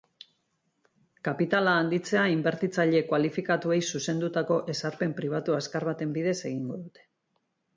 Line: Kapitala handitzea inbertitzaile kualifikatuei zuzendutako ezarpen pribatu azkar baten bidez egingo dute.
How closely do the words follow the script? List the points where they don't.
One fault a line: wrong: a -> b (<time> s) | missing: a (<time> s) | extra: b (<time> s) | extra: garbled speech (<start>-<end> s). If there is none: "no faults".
no faults